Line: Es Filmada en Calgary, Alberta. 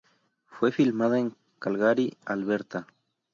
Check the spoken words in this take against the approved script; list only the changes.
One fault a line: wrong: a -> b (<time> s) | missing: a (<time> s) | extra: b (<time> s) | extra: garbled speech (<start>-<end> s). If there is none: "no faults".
wrong: Es -> Fue (0.5 s)